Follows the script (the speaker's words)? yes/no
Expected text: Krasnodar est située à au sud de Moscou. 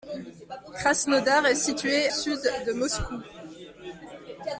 no